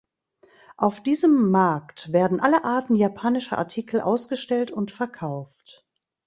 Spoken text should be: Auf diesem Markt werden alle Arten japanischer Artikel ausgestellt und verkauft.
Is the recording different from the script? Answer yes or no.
no